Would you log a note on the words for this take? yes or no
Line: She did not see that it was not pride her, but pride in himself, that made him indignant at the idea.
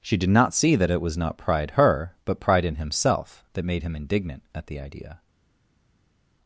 no